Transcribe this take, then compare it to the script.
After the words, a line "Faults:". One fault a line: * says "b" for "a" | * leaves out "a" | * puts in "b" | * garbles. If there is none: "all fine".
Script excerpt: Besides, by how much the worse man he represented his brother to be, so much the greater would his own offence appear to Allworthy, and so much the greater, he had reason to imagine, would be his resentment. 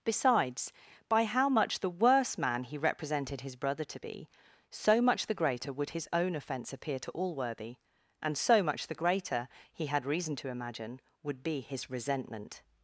Besides, by how much the worse man he represented his brother to be, so much the greater would his own offence appear to Allworthy, and so much the greater, he had reason to imagine, would be his resentment.
Faults:
all fine